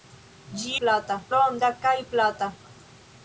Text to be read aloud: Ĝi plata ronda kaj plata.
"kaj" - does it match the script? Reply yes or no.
yes